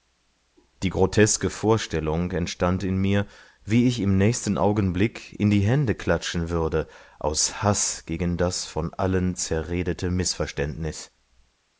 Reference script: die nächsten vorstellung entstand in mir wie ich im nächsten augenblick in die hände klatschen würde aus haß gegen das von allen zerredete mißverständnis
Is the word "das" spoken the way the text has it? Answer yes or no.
yes